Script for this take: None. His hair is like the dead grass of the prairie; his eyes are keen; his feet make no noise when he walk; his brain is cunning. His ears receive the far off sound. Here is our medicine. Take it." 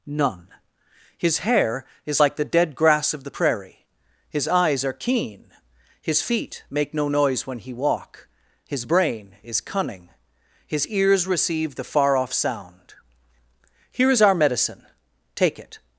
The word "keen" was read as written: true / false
true